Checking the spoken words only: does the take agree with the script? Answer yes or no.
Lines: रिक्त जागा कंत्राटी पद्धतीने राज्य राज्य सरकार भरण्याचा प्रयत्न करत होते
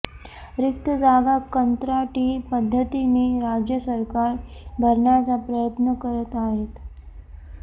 no